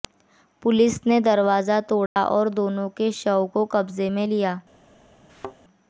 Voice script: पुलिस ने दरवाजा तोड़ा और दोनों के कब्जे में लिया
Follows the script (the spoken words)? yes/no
no